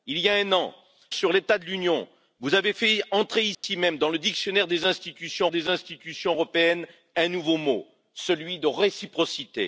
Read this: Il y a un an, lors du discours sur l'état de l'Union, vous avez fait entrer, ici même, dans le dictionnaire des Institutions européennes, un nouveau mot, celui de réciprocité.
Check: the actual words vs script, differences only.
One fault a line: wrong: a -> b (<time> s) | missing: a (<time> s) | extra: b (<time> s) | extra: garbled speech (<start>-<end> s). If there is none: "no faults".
missing: lors du discours (0.7 s)
extra: des Institutions (5.5 s)